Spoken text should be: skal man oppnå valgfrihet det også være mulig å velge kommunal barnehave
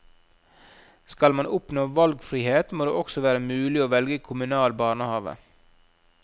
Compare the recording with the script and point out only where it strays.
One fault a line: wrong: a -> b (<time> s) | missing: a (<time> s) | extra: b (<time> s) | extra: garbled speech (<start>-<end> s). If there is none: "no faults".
extra: må (2.7 s)